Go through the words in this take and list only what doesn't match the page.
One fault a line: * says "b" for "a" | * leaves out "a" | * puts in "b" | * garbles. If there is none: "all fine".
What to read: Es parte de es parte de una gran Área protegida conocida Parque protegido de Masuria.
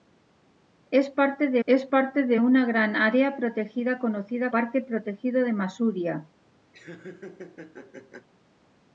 all fine